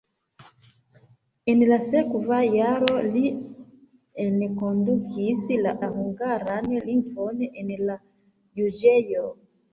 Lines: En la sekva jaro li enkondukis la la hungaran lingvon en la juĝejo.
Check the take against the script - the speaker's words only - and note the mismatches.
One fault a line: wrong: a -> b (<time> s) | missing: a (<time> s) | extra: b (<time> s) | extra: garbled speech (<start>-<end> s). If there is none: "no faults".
no faults